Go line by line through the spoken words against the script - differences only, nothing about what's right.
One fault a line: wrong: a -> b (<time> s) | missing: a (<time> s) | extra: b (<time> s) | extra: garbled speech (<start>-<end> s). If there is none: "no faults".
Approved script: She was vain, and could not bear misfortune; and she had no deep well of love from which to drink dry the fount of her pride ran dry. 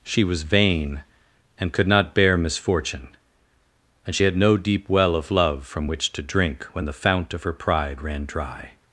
wrong: dry -> when (6.7 s)